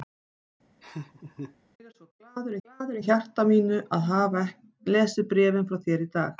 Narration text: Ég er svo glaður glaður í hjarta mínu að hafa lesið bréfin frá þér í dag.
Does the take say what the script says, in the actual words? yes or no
yes